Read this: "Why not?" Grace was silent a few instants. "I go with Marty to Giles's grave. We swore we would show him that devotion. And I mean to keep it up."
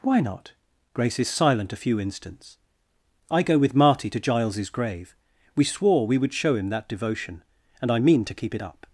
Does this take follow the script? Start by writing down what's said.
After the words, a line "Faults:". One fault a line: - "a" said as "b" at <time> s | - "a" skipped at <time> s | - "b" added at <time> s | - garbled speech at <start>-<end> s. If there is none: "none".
"Why not?" Grace is silent a few instants. "I go with Marty to Giles's grave. We swore we would show him that devotion. And I mean to keep it up."
Faults:
- "was" said as "is" at 1.2 s